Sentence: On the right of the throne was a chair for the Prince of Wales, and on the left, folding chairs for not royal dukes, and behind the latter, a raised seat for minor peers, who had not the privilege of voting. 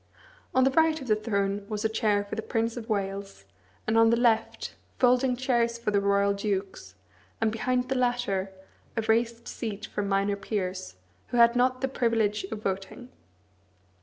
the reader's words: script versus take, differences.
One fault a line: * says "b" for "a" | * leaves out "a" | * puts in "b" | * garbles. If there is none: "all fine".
* says "the" for "not"